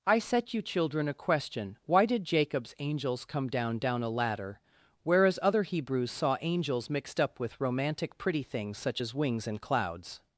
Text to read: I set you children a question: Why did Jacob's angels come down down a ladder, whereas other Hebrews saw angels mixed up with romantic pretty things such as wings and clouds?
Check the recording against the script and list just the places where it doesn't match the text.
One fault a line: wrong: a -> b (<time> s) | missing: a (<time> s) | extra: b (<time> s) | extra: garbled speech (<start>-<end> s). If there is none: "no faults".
no faults